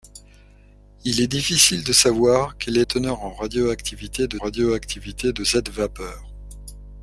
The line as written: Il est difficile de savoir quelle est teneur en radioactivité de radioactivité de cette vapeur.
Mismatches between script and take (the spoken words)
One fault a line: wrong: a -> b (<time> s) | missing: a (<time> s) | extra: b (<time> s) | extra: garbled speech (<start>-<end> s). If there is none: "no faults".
no faults